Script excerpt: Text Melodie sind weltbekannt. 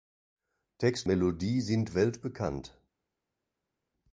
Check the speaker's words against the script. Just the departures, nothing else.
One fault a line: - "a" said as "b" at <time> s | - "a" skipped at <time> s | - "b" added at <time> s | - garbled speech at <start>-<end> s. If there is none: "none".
none